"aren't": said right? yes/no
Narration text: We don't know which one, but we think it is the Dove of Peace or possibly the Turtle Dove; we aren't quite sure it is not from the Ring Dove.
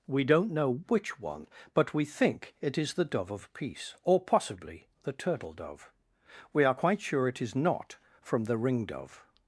no